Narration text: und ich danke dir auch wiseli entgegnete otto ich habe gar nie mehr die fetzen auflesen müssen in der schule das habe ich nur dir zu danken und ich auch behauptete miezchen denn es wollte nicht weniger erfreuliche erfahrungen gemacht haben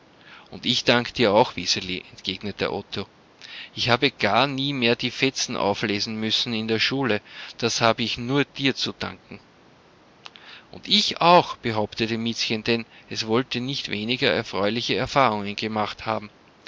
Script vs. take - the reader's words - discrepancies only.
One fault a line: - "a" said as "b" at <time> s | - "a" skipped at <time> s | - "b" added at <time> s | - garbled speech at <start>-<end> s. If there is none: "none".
none